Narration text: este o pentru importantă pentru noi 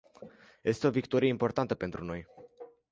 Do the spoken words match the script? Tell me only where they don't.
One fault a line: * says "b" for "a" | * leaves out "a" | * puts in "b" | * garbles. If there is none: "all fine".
* says "victorie" for "pentru"